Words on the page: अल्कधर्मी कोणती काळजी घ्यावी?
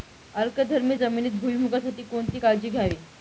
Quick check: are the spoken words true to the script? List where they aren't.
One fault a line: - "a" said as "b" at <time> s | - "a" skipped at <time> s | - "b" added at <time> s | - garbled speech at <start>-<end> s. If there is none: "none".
- "जमिनीत भुईमूगासाठी" added at 0.9 s